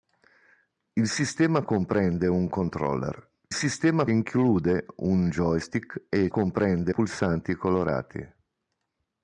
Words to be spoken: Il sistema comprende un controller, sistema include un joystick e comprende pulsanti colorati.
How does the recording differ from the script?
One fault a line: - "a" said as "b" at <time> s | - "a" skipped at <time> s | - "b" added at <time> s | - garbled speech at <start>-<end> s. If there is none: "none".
none